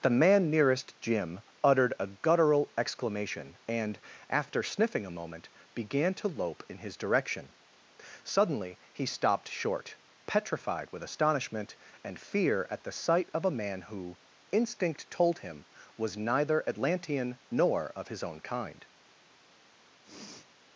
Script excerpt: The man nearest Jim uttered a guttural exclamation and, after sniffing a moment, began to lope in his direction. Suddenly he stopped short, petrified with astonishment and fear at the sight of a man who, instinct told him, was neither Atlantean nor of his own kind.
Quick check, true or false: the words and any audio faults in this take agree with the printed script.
false